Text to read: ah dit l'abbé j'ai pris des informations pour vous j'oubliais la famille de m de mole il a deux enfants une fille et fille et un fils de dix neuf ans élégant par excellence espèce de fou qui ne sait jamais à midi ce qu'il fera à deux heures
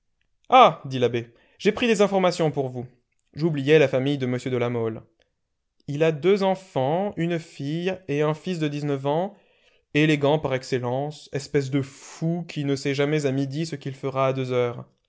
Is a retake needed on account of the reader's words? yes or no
yes